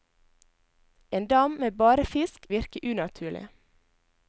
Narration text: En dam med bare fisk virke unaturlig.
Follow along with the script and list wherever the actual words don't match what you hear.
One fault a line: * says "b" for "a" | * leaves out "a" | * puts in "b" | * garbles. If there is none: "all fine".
all fine